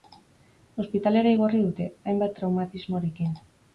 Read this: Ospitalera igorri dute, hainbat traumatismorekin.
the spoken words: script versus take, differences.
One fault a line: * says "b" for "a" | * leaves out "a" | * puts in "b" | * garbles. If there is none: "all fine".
all fine